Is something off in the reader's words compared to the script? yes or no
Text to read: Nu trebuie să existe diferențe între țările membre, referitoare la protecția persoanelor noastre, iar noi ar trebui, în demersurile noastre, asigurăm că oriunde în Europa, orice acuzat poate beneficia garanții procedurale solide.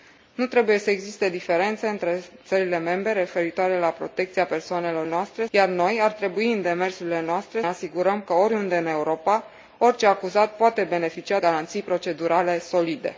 no